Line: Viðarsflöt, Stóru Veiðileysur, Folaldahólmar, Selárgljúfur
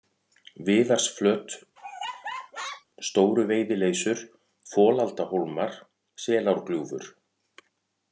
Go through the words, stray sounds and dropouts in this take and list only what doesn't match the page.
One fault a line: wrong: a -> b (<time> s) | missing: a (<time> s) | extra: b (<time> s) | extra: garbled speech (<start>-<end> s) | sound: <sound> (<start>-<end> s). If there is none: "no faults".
sound: laugh (1.8-2.9 s)